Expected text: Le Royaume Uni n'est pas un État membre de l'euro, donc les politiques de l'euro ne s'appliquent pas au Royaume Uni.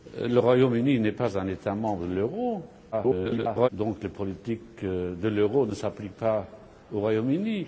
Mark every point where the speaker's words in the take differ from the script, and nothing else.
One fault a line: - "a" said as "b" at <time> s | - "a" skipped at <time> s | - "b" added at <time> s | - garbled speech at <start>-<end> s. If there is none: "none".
- garbled speech at 2.9-3.7 s